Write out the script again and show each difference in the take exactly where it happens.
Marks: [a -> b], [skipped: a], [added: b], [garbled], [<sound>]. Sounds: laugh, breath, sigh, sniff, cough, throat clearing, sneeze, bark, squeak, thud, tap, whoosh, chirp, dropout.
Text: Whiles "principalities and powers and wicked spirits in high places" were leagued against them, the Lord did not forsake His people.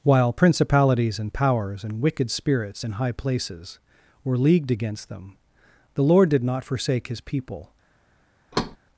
[Whiles -> While] "principalities and powers and wicked spirits in high places" were leagued against them, the Lord did not forsake His people. [thud]